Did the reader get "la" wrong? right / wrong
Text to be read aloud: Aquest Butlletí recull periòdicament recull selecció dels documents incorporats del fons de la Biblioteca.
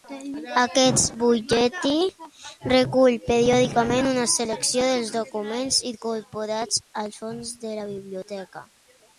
right